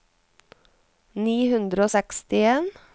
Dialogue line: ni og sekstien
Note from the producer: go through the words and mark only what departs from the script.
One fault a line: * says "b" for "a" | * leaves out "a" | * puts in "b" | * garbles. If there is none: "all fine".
* puts in "hundre"